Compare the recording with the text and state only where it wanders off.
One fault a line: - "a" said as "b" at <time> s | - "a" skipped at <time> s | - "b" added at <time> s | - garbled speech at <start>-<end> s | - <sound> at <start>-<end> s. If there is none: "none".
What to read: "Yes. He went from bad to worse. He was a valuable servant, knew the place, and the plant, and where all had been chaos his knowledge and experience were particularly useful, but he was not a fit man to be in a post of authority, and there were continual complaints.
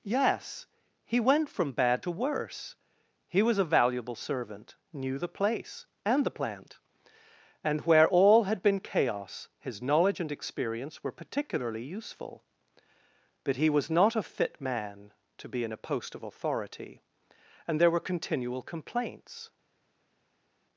none